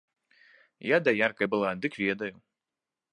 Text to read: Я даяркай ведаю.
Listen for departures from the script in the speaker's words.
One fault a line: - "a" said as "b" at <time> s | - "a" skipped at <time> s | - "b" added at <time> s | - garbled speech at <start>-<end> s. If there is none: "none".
- "была дык" added at 1.4 s